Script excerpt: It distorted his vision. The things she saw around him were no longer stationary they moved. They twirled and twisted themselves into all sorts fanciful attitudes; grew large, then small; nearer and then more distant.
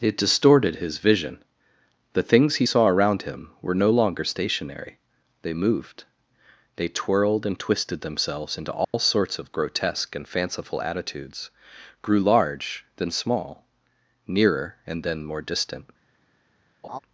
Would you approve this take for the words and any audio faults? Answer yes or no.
no